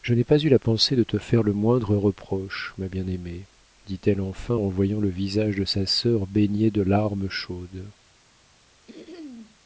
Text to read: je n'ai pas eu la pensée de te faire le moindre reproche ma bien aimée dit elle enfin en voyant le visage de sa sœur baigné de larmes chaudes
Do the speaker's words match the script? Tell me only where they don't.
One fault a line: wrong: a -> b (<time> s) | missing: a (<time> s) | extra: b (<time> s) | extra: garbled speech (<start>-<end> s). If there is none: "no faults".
no faults